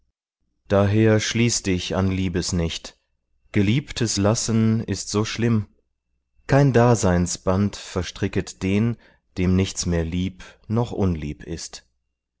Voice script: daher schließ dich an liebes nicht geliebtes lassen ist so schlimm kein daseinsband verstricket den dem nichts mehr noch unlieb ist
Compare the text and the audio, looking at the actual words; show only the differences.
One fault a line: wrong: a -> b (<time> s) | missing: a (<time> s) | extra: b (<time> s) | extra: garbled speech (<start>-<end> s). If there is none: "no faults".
extra: lieb (10.0 s)